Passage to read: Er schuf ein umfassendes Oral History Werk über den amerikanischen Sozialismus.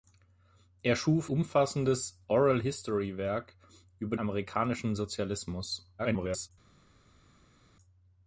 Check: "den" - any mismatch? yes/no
yes